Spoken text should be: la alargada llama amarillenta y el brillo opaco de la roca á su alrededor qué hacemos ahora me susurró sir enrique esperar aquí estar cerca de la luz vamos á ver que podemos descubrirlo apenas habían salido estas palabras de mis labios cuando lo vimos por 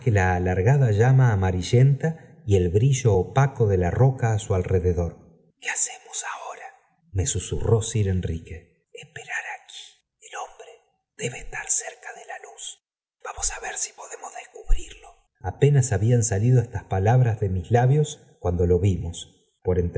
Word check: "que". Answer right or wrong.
wrong